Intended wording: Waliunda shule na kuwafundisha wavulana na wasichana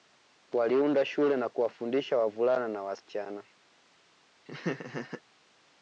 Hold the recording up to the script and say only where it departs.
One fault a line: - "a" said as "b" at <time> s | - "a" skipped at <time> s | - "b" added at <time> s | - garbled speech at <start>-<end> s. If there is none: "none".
none